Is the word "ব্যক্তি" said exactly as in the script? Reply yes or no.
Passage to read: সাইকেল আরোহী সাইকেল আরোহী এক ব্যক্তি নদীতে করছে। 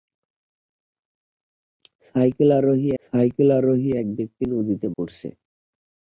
yes